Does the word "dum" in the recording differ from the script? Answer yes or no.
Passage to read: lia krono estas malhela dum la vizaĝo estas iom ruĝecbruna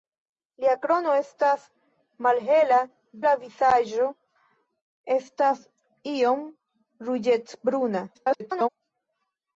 yes